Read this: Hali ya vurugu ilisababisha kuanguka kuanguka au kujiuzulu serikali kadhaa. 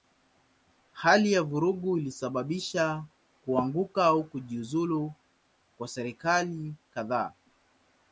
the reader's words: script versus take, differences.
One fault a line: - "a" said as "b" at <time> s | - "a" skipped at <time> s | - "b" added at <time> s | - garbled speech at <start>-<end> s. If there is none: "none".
- "kuanguka" skipped at 4.0 s
- "kwa" added at 5.8 s